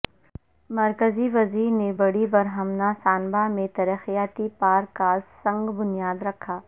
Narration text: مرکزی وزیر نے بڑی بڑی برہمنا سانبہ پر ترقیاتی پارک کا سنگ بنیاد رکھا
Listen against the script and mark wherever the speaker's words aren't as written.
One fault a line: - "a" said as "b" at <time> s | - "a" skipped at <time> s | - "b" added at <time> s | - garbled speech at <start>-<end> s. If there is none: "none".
- "بڑی" skipped at 2.3 s
- "پر" said as "میں" at 3.5 s